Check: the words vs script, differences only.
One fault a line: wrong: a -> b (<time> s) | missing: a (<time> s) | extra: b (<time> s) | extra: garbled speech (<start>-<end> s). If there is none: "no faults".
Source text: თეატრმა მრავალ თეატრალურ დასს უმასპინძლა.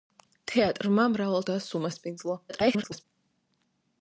missing: თეატრალურ (1.5 s)
extra: garbled speech (2.5-3.0 s)